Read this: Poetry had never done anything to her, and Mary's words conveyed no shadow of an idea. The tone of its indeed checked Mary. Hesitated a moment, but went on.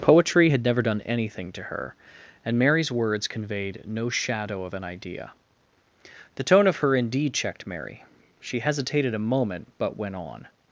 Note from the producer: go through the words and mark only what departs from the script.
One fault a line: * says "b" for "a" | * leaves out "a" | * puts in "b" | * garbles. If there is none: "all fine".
* says "her" for "its"
* puts in "She"